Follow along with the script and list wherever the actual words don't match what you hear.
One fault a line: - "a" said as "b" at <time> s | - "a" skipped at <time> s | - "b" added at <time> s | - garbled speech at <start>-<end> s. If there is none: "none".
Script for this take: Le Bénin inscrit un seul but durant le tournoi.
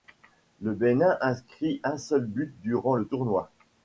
none